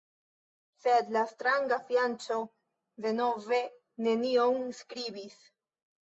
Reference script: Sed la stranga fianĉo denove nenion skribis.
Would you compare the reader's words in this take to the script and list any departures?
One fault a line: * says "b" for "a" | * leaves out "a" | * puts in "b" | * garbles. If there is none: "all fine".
all fine